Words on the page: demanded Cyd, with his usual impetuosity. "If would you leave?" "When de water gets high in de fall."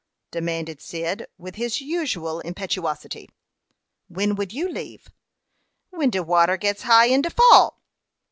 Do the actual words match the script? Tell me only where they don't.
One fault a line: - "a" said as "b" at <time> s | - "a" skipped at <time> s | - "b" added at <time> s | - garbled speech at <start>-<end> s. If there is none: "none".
- "If" said as "When" at 4.1 s